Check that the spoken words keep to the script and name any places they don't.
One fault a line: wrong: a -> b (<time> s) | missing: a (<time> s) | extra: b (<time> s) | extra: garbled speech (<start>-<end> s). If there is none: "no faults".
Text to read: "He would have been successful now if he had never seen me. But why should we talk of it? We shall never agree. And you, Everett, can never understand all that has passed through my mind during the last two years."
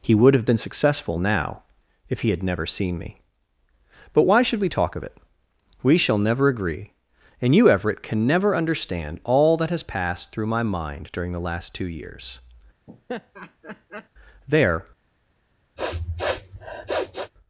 extra: There (14.5 s)